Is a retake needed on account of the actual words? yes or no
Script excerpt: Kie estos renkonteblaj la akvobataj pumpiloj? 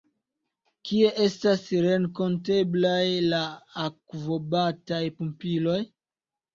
yes